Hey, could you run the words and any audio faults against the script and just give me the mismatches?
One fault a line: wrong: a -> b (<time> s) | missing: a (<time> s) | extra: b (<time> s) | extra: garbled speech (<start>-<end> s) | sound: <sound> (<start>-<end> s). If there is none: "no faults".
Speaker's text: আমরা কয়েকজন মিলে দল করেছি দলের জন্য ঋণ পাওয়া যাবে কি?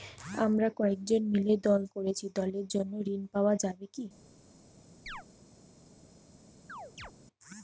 sound: chirp (5.1-5.2 s)
sound: chirp (6.7-7.1 s)